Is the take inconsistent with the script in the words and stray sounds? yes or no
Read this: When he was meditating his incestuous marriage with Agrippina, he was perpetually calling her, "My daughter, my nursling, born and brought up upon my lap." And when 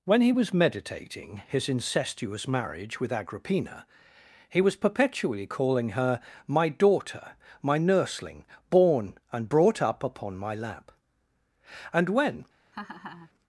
yes